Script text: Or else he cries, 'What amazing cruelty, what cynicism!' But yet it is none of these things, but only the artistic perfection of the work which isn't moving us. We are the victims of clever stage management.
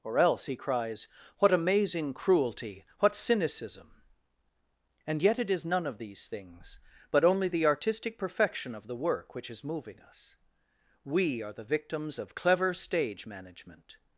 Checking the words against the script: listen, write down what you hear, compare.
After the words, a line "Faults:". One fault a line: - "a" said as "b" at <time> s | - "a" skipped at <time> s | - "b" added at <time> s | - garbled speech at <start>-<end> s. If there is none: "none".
Or else he cries, 'What amazing cruelty, what cynicism!' And yet it is none of these things, but only the artistic perfection of the work which is moving us. We are the victims of clever stage management.
Faults:
- "But" said as "And" at 5.1 s
- "isn't" said as "is" at 9.5 s